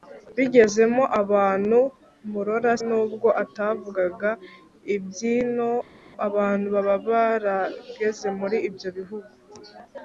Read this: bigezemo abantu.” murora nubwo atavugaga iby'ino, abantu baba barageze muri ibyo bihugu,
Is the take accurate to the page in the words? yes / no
yes